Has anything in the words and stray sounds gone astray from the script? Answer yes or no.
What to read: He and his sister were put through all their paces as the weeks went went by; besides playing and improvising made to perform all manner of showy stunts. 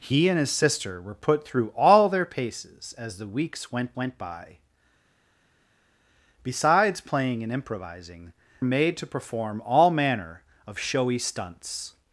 no